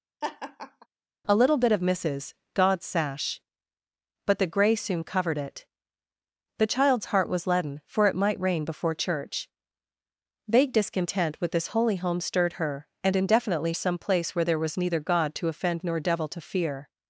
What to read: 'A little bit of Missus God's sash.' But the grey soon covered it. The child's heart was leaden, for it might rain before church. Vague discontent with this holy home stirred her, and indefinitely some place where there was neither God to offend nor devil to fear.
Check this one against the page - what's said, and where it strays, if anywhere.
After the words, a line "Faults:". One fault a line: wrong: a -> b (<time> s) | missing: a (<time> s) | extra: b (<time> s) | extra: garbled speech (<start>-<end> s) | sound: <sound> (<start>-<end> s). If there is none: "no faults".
'A little bit of Missus God's sash.' But the grey soon covered it. The child's heart was leaden, for it might rain before church. Vague discontent with this holy home stirred her, and indefinitely some place where there was neither God to offend nor devil to fear.
Faults:
sound: laugh (0.2-0.9 s)